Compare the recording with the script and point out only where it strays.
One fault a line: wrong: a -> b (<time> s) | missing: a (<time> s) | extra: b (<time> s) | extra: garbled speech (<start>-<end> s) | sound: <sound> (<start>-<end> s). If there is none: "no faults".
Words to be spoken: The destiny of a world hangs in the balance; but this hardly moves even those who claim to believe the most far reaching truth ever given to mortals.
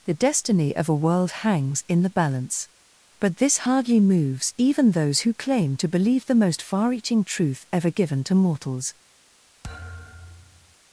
sound: thud (9.6-10.8 s)